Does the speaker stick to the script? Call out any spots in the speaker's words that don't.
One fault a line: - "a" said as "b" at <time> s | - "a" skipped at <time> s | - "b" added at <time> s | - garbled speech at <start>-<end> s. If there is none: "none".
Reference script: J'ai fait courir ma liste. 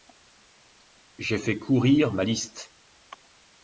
none